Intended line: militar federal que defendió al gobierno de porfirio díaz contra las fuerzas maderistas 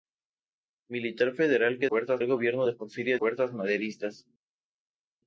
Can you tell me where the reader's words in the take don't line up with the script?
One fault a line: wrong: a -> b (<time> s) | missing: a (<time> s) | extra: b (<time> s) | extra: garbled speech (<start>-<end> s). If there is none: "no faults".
wrong: defendió -> fuerzas (1.9 s)
missing: díaz contra las (3.2 s)